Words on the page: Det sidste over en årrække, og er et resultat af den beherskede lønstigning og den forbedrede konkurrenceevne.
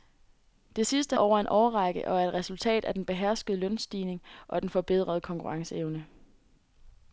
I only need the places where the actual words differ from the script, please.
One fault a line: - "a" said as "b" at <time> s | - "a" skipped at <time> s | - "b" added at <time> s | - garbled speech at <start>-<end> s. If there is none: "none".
none